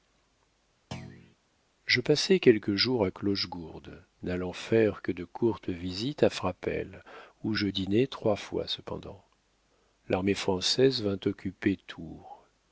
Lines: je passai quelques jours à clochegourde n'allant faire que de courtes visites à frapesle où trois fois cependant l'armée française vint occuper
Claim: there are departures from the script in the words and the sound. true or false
true